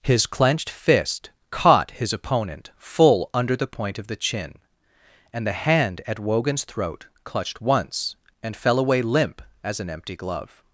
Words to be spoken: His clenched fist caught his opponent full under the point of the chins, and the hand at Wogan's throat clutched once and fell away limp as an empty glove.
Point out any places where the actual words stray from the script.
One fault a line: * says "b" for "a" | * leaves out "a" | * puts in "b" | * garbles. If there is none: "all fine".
* says "chin" for "chins"